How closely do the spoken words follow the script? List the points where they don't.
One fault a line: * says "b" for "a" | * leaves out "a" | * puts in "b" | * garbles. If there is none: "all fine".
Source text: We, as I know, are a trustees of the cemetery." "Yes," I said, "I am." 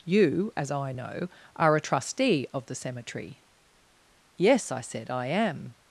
* says "You" for "We"
* says "trustee" for "trustees"